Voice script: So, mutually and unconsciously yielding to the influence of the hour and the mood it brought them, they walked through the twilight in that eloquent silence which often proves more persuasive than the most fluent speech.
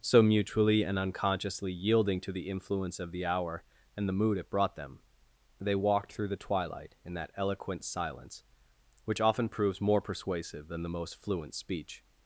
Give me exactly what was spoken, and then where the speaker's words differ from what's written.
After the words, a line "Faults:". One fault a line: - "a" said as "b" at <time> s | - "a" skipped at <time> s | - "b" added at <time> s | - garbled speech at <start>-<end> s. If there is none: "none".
So, mutually and unconsciously yielding to the influence of the hour and the mood it brought them, they walked through the twilight in that eloquent silence which often proves more persuasive than the most fluent speech.
Faults:
none